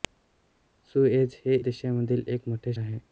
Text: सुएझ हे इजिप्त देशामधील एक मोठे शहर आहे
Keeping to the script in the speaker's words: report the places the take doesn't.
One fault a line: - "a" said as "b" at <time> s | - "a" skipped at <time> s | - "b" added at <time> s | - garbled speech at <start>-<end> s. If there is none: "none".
- "इजिप्त" skipped at 1.6 s
- "शहर" skipped at 2.7 s